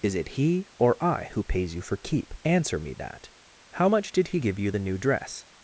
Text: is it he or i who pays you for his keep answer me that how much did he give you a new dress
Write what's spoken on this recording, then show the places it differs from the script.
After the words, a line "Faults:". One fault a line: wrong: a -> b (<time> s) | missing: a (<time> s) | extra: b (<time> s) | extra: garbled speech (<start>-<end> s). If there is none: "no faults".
is it he or i who pays you for keep answer me that how much did he give you the new dress
Faults:
missing: his (2.0 s)
wrong: a -> the (4.7 s)